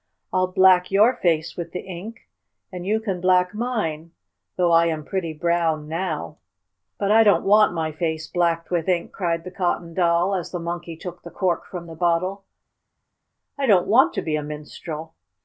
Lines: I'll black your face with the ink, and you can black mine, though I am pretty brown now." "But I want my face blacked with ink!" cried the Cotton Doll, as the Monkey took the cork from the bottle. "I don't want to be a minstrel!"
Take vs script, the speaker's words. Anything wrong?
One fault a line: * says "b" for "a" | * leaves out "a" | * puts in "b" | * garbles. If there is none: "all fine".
* puts in "don't"